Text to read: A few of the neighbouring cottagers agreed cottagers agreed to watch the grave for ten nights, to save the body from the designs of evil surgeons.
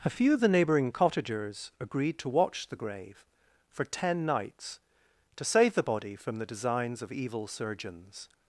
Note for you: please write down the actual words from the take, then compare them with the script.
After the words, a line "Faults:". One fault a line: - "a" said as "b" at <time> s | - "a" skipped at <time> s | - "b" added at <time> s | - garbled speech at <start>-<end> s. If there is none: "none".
A few of the neighbouring cottagers agreed to watch the grave for ten nights, to save the body from the designs of evil surgeons.
Faults:
- "cottagers agreed" skipped at 2.2 s